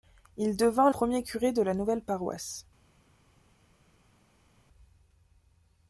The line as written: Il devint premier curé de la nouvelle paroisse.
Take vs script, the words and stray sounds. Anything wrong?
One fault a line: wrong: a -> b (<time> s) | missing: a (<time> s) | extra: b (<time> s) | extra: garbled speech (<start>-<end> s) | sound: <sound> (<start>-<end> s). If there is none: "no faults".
no faults